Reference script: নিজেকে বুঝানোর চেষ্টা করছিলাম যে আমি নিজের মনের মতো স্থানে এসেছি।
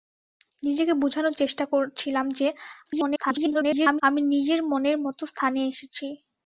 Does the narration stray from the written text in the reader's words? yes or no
yes